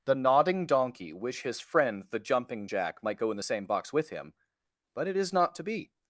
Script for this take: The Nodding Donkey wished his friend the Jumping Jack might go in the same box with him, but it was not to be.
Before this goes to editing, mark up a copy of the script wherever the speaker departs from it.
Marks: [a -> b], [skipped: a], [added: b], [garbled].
The Nodding Donkey [wished -> wish] his friend the Jumping Jack might go in the same box with him, but it [was -> is] not to be.